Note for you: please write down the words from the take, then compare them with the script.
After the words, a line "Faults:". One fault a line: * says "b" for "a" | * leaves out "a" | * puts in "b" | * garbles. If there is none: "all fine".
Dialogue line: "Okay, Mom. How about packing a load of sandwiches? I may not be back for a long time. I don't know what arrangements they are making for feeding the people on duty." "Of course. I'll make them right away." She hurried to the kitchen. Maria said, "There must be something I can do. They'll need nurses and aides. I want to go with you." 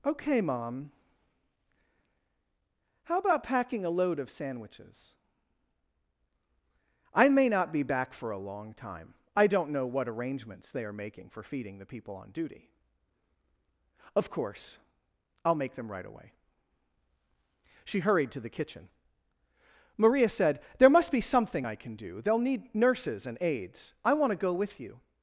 "Okay, Mom. How about packing a load of sandwiches? I may not be back for a long time. I don't know what arrangements they are making for feeding the people on duty." "Of course. I'll make them right away." She hurried to the kitchen. Maria said, "There must be something I can do. They'll need nurses and aides. I want to go with you."
Faults:
all fine